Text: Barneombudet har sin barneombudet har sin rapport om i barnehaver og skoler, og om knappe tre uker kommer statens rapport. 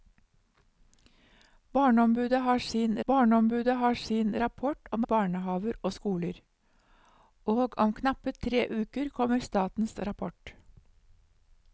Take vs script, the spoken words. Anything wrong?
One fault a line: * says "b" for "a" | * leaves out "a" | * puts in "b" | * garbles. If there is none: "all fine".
all fine